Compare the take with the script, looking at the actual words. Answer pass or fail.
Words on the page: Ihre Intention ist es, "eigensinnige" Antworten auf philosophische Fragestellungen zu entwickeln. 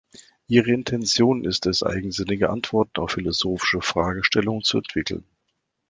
pass